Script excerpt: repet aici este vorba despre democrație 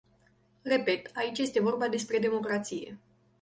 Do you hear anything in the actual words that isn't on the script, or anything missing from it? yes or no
no